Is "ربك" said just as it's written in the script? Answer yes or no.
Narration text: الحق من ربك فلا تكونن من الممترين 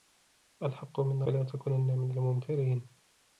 no